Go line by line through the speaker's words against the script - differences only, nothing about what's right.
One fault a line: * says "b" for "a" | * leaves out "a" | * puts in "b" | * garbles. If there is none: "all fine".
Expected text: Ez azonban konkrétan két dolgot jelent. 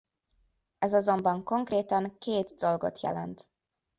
all fine